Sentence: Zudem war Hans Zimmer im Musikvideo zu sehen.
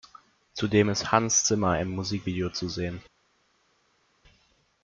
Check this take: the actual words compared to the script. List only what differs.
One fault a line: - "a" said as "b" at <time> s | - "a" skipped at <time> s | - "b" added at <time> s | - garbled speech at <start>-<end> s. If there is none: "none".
- "war" said as "ist" at 0.9 s